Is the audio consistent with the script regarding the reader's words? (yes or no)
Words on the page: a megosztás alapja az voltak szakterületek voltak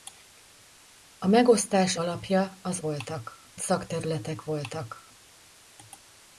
yes